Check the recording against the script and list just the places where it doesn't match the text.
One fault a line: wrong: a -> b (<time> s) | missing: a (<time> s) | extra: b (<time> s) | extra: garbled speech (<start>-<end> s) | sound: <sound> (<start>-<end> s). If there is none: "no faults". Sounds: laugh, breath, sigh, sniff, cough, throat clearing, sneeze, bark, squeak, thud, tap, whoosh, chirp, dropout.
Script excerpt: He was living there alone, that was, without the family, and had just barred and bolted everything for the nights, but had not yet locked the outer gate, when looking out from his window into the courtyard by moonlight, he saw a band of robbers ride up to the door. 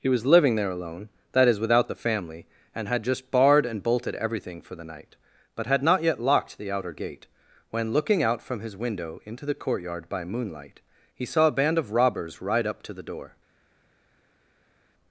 wrong: was -> is (1.5 s)
wrong: nights -> night (4.8 s)